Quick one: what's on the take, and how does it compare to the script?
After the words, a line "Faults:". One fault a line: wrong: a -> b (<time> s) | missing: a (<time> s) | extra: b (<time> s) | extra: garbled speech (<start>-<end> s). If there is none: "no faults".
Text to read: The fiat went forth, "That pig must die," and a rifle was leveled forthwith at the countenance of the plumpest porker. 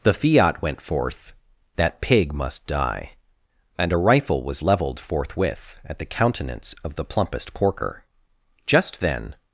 The fiat went forth, "That pig must die," and a rifle was leveled forthwith at the countenance of the plumpest porker. Just then
Faults:
extra: Just then (8.7 s)